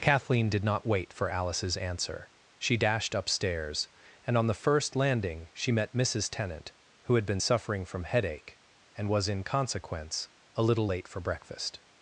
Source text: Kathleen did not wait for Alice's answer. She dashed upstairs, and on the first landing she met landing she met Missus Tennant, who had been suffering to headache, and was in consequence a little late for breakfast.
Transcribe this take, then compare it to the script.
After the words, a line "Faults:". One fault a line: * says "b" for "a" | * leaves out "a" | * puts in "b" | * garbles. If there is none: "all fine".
Kathleen did not wait for Alice's answer. She dashed upstairs, and on the first landing she met Missus Tennant, who had been suffering from headache, and was in consequence a little late for breakfast.
Faults:
* leaves out "landing she met"
* says "from" for "to"